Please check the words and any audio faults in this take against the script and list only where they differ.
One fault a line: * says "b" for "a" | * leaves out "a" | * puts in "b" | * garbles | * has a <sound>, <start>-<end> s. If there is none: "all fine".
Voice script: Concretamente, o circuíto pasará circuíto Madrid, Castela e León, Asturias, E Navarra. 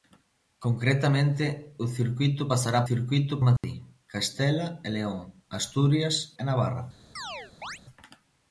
* has a dropout, 3.6-3.6 s
* has a chirp, 7.2-7.8 s